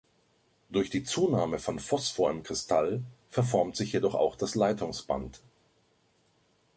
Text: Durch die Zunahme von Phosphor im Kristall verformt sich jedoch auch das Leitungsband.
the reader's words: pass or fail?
pass